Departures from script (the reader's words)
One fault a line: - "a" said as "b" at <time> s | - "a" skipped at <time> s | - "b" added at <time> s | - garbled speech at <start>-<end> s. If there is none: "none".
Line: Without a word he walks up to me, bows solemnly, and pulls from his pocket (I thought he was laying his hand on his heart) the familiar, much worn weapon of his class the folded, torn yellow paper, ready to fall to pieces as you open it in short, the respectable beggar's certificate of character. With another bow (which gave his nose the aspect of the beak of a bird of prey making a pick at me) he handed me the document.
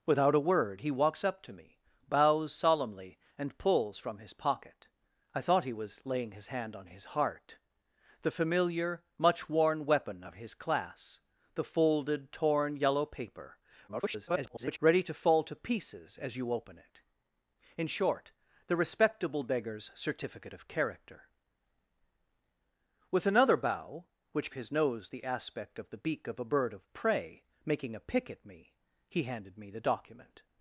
- garbled speech at 13.9-14.8 s
- "gave" skipped at 24.5 s